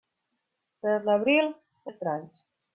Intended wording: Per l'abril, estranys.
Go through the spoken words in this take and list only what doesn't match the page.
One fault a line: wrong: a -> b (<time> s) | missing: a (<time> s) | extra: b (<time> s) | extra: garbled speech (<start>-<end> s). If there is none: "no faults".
no faults